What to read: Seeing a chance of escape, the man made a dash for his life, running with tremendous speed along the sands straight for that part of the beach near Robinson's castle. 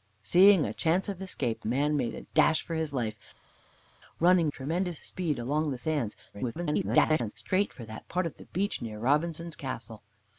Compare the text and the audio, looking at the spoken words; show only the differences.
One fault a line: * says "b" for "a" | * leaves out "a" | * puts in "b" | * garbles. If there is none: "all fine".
* leaves out "the"
* leaves out "with"
* garbles